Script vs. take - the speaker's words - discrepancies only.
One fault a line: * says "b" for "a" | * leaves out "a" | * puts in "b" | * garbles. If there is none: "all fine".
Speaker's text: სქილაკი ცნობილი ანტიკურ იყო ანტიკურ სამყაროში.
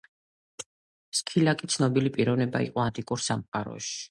* says "პიროვნება" for "ანტიკურ"